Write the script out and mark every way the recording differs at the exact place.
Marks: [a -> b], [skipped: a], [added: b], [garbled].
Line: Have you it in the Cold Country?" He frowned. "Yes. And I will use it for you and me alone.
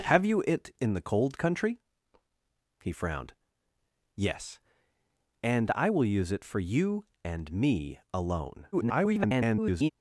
Have you it in the Cold Country?" He frowned. "Yes. And I will use it for you and me alone. [garbled]